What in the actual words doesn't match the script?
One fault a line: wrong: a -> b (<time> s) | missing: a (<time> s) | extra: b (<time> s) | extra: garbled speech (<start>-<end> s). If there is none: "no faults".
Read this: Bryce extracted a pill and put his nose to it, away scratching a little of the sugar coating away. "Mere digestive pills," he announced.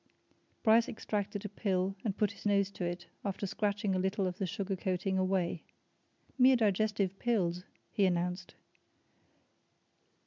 wrong: away -> after (3.3 s)